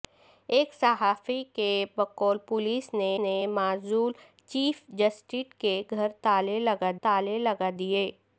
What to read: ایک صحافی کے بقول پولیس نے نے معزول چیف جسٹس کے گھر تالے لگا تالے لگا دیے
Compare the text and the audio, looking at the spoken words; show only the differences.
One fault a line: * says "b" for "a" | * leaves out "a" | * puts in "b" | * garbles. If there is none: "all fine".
all fine